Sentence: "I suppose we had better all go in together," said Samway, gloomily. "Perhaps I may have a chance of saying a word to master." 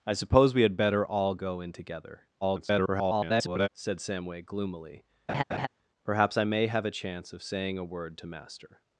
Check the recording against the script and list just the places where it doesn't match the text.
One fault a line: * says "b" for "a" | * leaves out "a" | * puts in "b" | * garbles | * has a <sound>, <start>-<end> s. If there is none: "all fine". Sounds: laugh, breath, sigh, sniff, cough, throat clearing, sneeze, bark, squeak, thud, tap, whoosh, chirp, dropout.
* garbles
* has a laugh, 5.3-5.7 s